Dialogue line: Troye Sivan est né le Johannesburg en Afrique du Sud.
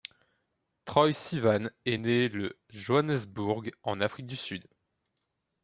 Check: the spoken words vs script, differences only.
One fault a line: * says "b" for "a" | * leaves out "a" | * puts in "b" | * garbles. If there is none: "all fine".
all fine